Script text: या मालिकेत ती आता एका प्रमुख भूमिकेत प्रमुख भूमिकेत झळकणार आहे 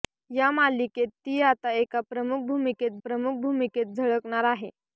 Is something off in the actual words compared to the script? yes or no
no